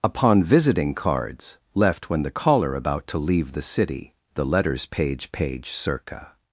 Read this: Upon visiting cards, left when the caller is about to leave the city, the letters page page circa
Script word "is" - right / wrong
wrong